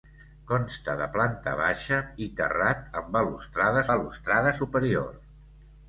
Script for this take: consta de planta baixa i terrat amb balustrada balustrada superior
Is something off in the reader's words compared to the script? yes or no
no